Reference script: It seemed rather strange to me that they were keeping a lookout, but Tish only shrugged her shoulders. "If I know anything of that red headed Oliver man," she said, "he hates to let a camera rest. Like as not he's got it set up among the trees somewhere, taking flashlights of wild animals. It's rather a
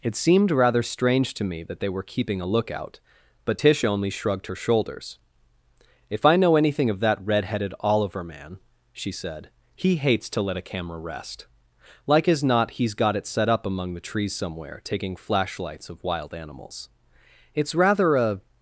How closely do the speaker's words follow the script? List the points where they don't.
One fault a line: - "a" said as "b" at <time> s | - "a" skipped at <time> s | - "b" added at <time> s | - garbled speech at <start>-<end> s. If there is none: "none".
none